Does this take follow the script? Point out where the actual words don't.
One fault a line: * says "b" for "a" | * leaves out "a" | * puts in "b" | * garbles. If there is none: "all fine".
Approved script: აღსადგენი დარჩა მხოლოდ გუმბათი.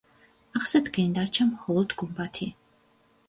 all fine